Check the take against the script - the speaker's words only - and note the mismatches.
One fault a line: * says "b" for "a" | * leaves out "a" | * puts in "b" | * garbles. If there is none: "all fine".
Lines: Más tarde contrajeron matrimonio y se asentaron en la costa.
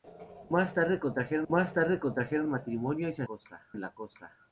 * puts in "más tarde contrajeron"
* says "costa" for "asentaron"